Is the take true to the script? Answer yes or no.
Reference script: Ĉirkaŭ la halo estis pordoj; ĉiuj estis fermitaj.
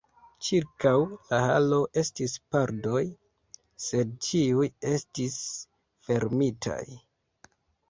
no